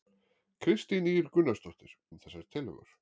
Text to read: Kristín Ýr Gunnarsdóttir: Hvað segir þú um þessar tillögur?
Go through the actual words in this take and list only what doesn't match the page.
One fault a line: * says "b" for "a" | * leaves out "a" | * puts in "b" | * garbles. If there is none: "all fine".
* leaves out "Hvað segir þú"